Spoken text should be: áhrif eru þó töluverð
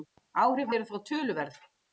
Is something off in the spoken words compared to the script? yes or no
no